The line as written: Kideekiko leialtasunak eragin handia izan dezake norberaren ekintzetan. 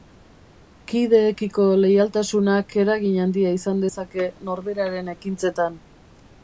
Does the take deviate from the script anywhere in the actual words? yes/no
no